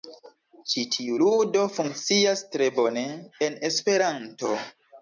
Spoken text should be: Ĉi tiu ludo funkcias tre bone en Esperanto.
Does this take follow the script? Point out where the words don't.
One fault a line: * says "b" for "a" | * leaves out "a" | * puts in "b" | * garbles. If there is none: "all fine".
all fine